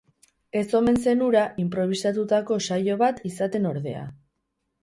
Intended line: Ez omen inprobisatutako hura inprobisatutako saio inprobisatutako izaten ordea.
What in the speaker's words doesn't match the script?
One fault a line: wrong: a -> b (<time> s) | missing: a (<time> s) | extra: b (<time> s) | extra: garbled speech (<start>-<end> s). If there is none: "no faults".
wrong: inprobisatutako -> zen (1.0 s)
wrong: inprobisatutako -> bat (3.1 s)